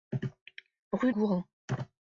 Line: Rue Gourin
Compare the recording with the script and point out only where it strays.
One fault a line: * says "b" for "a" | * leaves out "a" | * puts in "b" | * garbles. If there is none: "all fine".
all fine